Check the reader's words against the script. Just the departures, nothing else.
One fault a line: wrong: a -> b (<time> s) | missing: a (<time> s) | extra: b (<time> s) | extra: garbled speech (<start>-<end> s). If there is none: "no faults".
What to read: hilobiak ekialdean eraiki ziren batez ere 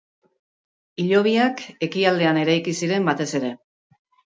no faults